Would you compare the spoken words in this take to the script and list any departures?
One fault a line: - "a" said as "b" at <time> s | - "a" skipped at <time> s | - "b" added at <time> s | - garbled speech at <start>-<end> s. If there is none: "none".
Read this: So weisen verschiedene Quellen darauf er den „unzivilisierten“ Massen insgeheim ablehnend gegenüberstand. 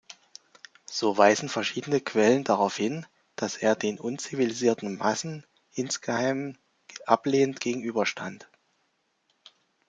- "hin dass" added at 2.7 s